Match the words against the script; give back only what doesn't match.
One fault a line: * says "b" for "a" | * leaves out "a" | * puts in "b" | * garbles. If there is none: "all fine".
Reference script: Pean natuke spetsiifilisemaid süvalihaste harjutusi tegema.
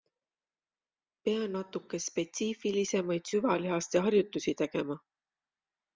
all fine